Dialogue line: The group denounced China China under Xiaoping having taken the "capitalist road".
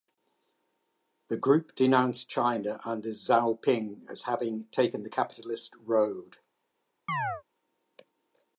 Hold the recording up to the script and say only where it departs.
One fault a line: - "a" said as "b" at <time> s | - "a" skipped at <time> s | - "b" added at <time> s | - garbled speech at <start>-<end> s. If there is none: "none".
- "China" skipped at 2.8 s
- "as" added at 4.1 s